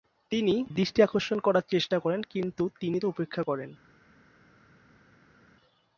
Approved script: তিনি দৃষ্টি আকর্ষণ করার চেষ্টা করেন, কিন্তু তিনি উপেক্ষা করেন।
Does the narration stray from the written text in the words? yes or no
no